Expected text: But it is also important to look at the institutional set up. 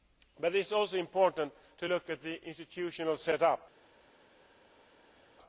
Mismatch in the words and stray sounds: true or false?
false